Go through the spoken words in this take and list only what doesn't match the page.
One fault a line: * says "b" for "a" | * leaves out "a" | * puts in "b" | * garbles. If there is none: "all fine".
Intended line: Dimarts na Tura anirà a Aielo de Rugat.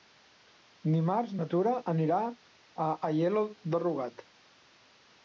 all fine